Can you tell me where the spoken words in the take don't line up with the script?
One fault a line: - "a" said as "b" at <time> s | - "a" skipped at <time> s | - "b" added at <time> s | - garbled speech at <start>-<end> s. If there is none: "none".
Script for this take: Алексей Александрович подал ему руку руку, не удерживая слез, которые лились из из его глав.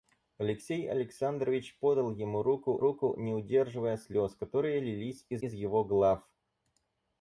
none